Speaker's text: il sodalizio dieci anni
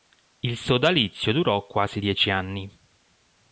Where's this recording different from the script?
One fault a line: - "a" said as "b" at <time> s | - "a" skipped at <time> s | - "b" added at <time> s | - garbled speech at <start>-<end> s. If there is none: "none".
- "durò quasi" added at 1.3 s